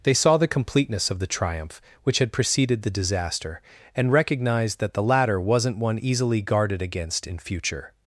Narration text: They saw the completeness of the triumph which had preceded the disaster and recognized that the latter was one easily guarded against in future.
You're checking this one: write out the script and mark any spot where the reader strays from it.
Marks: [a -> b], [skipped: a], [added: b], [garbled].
They saw the completeness of the triumph which had preceded the disaster and recognized that the latter [was -> wasn't] one easily guarded against in future.